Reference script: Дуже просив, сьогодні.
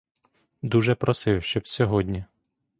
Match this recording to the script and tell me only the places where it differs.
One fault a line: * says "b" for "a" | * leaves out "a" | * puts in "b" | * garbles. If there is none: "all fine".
* puts in "щоб"